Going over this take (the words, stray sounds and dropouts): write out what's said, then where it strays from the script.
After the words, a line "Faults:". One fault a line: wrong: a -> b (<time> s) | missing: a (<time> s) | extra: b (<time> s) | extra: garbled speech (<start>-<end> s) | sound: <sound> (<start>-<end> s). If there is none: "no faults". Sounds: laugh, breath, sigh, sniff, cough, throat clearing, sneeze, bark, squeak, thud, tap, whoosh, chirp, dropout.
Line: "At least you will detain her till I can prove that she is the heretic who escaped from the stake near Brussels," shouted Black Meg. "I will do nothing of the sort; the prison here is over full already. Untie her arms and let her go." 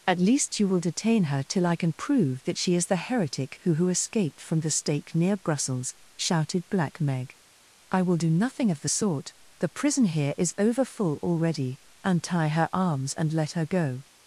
"At least you will detain her till I can prove that she is the heretic who who escaped from the stake near Brussels," shouted Black Meg. "I will do nothing of the sort; the prison here is over full already. Untie her arms and let her go."
Faults:
extra: who (3.7 s)